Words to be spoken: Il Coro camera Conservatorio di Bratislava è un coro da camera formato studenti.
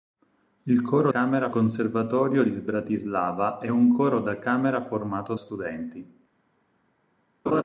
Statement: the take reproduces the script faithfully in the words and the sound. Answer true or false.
false